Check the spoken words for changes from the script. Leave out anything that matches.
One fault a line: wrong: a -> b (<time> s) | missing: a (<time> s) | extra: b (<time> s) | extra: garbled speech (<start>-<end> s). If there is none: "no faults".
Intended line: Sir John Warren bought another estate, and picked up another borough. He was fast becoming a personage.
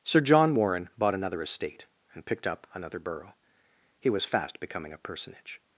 no faults